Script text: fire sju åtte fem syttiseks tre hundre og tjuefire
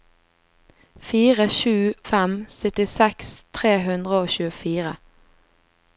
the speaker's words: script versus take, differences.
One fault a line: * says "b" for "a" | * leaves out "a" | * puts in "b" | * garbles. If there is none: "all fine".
* leaves out "åtte"